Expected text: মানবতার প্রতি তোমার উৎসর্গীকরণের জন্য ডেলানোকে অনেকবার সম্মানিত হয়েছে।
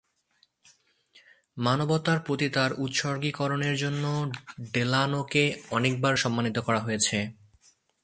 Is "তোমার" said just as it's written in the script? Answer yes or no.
no